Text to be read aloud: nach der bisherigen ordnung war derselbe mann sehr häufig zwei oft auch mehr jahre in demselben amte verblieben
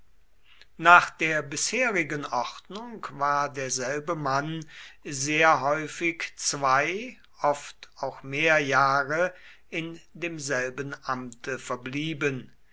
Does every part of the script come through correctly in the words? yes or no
yes